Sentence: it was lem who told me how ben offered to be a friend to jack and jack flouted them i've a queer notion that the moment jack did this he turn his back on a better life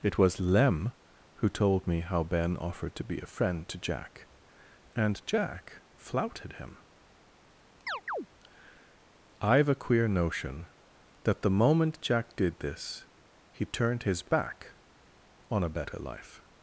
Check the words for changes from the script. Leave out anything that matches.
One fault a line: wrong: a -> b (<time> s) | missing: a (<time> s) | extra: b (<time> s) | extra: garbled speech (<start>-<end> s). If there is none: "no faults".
wrong: them -> him (6.5 s)
wrong: turn -> turned (13.7 s)